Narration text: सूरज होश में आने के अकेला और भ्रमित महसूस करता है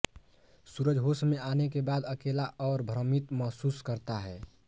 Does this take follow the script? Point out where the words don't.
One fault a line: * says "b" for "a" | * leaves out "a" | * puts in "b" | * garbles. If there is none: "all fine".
* puts in "बाद"